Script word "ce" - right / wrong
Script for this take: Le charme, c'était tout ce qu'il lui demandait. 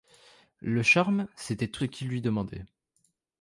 wrong